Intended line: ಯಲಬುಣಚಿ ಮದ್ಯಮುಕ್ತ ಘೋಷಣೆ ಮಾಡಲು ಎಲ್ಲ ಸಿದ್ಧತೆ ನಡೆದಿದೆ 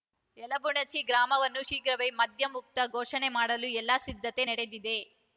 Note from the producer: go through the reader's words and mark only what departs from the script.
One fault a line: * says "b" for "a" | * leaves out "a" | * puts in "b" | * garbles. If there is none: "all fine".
* puts in "ಗ್ರಾಮವನ್ನು ಶೀಘ್ರವೇ"